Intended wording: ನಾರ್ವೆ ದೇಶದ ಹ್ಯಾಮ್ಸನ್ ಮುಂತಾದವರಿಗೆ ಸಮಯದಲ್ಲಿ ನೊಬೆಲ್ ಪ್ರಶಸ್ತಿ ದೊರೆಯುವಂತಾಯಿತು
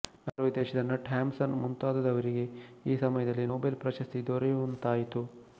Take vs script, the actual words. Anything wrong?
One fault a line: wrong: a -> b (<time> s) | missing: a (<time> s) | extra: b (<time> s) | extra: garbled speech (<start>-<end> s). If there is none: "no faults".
extra: ನಟ್ (0.8 s)
extra: ಈ (2.9 s)